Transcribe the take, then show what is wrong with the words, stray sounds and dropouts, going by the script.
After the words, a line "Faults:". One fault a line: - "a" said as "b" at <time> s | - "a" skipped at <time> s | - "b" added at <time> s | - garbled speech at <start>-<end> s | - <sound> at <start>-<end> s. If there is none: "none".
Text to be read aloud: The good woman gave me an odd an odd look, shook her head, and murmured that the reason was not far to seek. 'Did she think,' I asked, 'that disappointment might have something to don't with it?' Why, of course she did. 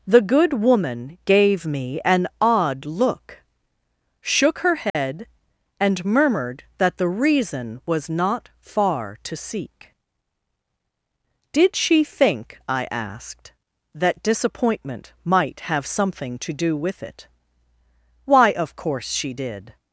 The good woman gave me an odd look, shook her head, and murmured that the reason was not far to seek. 'Did she think,' I asked, 'that disappointment might have something to do with it?' Why, of course she did.
Faults:
- "an odd" skipped at 2.9 s
- dropout at 4.9-5.0 s
- "don't" said as "do" at 16.5 s